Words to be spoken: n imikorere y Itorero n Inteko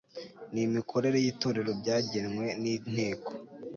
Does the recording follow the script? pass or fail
fail